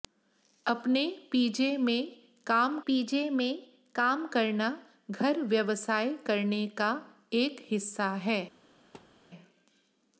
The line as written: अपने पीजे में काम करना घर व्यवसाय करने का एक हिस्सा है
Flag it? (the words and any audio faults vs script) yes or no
yes